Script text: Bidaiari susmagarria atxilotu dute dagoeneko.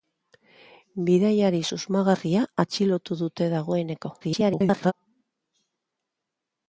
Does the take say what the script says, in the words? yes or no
no